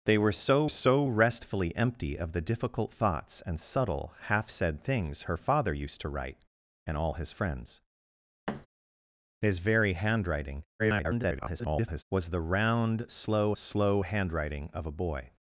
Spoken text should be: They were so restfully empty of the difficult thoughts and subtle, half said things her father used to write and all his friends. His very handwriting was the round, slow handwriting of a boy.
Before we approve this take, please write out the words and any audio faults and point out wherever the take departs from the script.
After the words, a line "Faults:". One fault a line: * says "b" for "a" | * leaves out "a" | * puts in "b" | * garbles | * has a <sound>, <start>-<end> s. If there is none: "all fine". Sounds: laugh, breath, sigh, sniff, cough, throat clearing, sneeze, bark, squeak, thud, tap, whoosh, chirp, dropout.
They were so so restfully empty of the difficult thoughts and subtle, half said things her father used to write and all his friends. His very handwriting [garbled] was the round, slow slow handwriting of a boy.
Faults:
* puts in "so"
* has a thud, 8.5-8.7 s
* garbles
* puts in "slow"